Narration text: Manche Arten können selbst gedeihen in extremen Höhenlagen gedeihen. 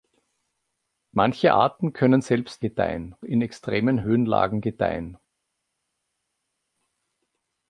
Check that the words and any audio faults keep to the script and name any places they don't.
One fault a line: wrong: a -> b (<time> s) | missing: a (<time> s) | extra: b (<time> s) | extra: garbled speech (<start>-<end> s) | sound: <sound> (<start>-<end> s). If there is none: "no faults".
no faults